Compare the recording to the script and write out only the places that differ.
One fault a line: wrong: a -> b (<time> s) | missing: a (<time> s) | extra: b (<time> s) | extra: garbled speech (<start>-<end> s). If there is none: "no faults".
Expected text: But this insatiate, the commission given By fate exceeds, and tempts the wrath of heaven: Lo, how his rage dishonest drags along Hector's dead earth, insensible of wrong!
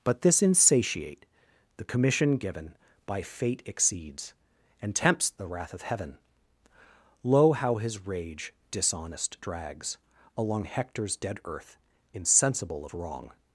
no faults